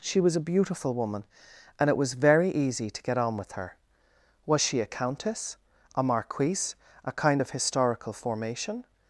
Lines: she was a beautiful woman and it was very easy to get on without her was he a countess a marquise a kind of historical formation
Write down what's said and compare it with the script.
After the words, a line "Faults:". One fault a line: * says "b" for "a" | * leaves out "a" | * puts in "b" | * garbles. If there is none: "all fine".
she was a beautiful woman and it was very easy to get on with her was she a countess a marquise a kind of historical formation
Faults:
* says "with" for "without"
* says "she" for "he"